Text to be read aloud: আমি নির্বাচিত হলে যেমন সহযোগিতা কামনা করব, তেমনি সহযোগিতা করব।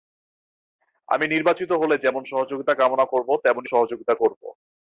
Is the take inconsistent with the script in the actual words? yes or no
no